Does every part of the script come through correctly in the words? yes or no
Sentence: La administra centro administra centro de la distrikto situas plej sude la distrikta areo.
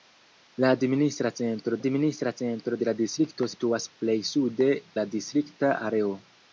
yes